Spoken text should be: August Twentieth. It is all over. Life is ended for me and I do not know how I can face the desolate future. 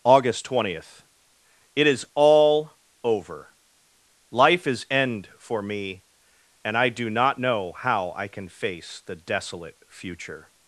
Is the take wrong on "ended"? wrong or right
wrong